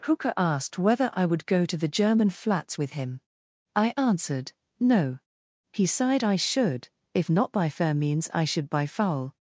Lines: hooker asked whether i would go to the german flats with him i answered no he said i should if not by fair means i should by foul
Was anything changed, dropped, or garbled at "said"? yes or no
yes